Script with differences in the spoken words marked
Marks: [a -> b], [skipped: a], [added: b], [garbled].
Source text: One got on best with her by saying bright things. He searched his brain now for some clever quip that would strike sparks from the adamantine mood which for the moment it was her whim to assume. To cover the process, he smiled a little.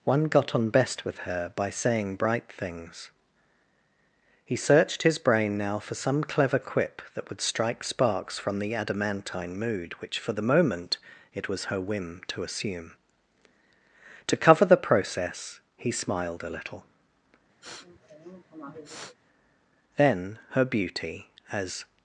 One got on best with her by saying bright things. He searched his brain now for some clever quip that would strike sparks from the adamantine mood which for the moment it was her whim to assume. To cover the process, he smiled a little. [added: Then her beauty as]